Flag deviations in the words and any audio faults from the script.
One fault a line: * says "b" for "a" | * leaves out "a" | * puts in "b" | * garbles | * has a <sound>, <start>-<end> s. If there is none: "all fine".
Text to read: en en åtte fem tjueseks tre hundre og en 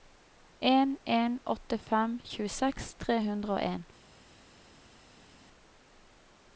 all fine